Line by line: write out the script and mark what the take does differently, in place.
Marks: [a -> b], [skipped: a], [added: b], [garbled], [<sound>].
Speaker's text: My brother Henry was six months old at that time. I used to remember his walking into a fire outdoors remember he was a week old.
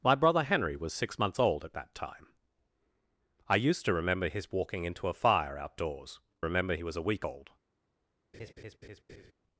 My brother Henry was six months old at that time. I used to remember his walking into a fire outdoors remember he was a week old. [laugh]